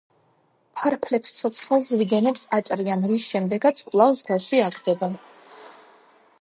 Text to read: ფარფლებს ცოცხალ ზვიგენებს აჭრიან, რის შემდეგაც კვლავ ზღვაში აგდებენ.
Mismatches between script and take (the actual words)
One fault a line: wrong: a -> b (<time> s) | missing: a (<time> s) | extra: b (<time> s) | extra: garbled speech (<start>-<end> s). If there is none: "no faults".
no faults